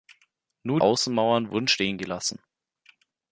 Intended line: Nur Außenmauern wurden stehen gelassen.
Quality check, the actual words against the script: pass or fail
pass